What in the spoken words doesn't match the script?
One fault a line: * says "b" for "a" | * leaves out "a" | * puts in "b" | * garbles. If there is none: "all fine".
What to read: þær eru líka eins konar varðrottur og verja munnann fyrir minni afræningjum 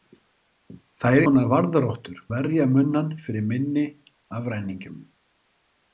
* leaves out "eru líka eins"
* leaves out "og"